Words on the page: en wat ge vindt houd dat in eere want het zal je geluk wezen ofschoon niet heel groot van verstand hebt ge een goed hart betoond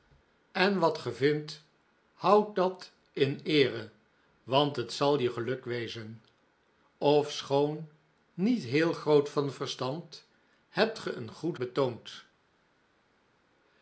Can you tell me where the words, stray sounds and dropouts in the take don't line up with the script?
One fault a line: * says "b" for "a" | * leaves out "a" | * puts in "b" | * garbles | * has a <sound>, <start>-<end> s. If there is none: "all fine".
* leaves out "hart"